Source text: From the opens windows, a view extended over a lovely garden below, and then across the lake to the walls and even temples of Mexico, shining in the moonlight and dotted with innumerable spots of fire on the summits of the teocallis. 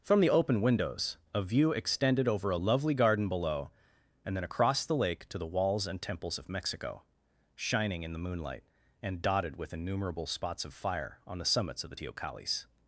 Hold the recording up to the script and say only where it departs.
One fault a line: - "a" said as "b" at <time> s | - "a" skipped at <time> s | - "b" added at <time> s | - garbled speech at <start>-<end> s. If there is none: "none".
- "opens" said as "open" at 0.3 s
- "even" skipped at 6.0 s